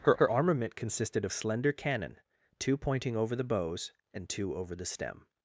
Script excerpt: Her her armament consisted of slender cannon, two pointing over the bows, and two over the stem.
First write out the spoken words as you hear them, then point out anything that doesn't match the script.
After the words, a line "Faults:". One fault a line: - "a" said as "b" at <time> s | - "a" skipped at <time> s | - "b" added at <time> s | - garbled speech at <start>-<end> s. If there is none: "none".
Her her armament consisted of slender cannon, two pointing over the bows, and two over the stem.
Faults:
none